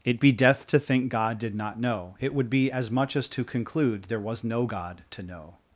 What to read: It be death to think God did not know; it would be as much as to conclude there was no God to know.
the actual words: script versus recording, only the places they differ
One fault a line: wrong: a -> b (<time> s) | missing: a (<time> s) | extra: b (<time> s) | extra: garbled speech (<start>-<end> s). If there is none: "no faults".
no faults